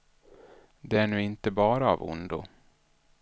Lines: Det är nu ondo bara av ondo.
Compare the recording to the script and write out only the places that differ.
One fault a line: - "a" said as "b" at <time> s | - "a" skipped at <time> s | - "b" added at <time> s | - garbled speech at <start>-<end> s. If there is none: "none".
- "ondo" said as "inte" at 1.2 s